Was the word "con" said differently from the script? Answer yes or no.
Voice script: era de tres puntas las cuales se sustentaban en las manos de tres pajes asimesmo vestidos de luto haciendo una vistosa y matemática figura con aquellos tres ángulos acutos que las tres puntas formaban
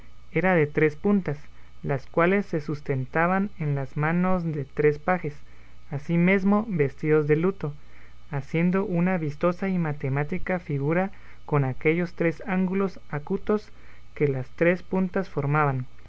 no